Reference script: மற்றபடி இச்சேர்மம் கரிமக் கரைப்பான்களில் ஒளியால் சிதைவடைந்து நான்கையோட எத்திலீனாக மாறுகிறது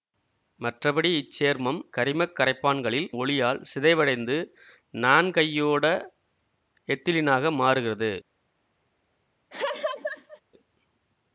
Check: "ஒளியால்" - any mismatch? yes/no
no